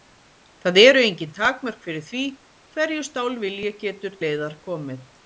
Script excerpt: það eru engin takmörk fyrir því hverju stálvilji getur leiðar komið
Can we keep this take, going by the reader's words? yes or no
yes